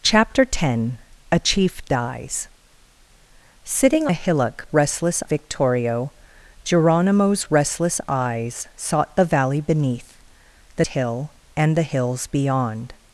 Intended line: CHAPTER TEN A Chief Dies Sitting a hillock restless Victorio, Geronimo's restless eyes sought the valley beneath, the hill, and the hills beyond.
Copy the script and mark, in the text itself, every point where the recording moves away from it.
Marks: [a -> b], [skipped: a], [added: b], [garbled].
CHAPTER TEN A Chief Dies Sitting a hillock restless Victorio, Geronimo's restless eyes sought the valley beneath, the hill, and the hills beyond.